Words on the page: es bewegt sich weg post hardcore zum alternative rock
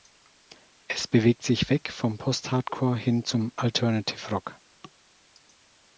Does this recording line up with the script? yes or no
no